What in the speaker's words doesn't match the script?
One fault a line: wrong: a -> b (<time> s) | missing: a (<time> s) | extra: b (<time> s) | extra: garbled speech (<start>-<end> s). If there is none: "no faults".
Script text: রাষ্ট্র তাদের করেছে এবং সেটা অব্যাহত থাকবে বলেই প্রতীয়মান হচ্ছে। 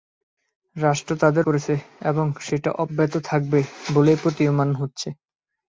no faults